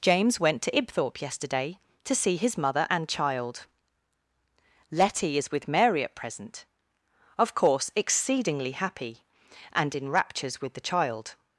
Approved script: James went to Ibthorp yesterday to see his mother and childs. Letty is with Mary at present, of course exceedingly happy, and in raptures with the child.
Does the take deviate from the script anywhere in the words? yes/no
yes